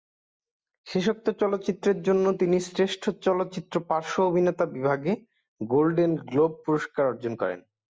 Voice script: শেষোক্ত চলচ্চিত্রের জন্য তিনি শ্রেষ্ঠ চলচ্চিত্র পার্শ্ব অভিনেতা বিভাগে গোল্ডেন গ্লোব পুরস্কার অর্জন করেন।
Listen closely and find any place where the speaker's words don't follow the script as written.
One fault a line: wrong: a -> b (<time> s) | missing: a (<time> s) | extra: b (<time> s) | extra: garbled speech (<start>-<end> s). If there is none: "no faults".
no faults